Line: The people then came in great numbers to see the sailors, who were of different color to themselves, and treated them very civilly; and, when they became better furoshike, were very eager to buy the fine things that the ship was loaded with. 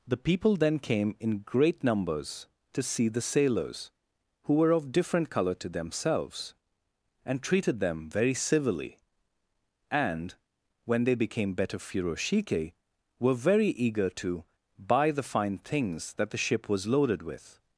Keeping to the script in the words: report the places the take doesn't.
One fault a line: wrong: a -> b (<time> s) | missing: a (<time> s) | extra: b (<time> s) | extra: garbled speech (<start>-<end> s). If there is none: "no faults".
no faults